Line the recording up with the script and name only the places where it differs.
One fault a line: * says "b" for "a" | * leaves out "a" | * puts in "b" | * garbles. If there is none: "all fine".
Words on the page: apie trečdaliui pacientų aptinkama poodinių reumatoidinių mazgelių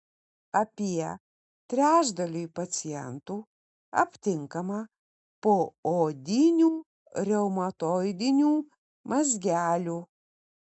all fine